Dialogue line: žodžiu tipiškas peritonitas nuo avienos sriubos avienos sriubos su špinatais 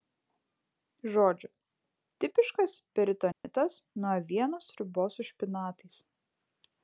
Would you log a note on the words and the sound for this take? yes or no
yes